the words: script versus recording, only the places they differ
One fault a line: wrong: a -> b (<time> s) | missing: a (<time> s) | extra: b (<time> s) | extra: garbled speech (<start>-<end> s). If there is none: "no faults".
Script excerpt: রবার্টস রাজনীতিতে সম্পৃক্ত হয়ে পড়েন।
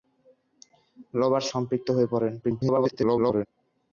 missing: রাজনীতিতে (1.5 s)
extra: garbled speech (2.4-3.5 s)